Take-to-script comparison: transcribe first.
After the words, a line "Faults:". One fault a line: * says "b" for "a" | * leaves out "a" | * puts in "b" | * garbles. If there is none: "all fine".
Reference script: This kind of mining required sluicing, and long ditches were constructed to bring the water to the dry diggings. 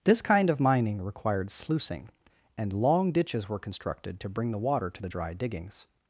This kind of mining required sluicing, and long ditches were constructed to bring the water to the dry diggings.
Faults:
all fine